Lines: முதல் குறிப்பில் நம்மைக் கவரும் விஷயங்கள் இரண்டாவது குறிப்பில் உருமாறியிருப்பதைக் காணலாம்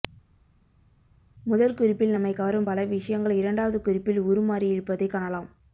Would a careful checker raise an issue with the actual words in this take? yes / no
yes